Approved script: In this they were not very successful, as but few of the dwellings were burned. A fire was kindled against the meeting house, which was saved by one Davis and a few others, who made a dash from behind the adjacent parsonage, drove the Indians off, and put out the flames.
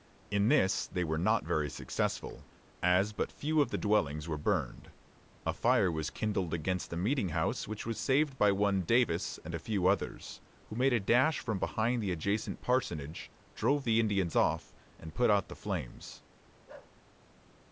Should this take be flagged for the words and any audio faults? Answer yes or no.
yes